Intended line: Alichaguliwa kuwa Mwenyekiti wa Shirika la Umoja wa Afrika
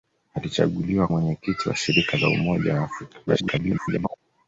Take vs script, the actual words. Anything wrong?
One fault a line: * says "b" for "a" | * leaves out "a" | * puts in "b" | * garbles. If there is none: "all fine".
* leaves out "kuwa"
* garbles